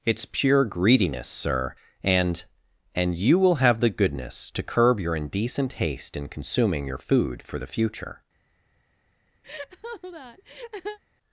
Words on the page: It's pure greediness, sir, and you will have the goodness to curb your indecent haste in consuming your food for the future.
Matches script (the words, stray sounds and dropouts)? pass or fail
fail